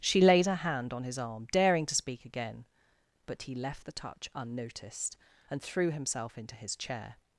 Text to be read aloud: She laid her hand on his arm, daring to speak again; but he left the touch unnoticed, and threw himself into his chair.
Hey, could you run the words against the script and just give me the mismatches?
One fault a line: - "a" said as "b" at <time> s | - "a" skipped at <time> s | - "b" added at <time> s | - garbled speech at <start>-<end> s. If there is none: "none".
none